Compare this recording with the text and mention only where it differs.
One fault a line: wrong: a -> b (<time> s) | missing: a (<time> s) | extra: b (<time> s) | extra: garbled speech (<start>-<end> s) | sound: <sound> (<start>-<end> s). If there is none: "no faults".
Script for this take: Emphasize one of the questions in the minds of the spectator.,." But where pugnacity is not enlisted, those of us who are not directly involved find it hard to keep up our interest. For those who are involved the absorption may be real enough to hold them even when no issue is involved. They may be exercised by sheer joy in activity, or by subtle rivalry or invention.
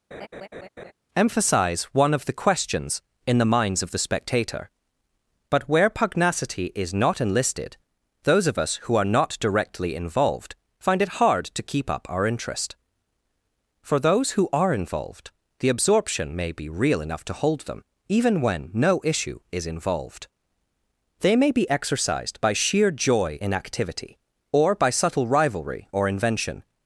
sound: laugh (0.1-0.9 s)